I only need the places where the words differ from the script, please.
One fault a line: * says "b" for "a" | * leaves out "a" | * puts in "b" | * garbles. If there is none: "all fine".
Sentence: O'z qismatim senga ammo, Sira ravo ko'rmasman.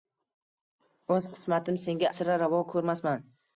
* leaves out "ammo"